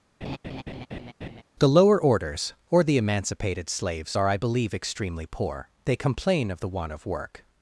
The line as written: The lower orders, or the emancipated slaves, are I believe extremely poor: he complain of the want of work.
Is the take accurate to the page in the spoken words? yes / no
no